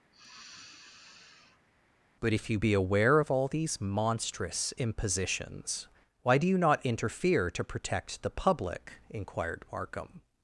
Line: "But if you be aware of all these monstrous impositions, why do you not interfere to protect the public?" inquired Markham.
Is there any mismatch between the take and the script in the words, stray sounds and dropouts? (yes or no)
yes